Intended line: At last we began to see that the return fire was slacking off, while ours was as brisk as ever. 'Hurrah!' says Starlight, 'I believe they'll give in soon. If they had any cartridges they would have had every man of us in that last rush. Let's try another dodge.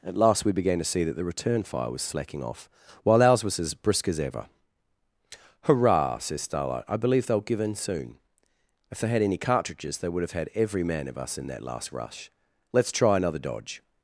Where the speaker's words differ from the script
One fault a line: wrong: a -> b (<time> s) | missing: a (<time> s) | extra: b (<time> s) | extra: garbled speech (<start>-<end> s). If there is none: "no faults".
no faults